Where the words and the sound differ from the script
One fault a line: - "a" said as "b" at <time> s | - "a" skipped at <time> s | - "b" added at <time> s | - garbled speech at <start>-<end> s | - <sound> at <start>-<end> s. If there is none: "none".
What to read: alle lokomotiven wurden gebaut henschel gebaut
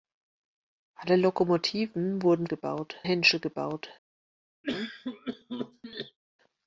- cough at 4.6-6.2 s